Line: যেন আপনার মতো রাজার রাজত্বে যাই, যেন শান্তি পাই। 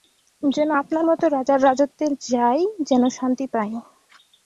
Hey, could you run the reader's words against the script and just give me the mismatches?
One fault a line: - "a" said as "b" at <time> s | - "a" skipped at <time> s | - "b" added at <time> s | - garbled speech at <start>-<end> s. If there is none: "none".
none